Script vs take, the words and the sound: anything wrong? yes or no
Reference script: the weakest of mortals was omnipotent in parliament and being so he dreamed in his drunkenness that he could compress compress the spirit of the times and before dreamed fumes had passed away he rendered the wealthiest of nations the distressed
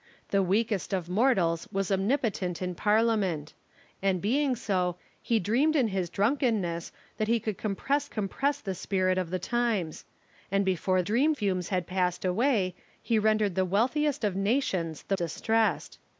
no